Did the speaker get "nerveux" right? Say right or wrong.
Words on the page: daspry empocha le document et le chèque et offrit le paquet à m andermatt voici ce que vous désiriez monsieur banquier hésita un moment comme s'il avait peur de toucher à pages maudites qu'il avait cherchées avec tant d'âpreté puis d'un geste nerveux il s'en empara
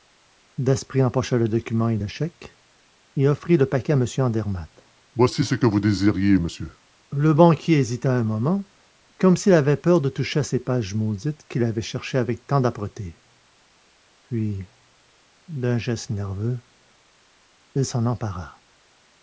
right